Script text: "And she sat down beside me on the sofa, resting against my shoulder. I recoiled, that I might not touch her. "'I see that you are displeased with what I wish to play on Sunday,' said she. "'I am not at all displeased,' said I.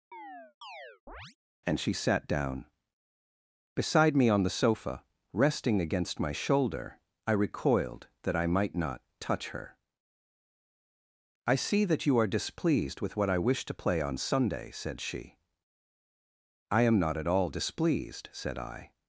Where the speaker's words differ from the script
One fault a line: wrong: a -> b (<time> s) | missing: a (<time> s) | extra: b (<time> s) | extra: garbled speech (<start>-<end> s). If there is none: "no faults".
no faults